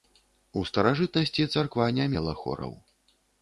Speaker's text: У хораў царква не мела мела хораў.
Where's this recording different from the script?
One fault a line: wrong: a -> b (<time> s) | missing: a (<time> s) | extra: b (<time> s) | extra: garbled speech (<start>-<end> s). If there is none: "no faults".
wrong: хораў -> старажытнасці (0.7 s)
missing: мела (2.4 s)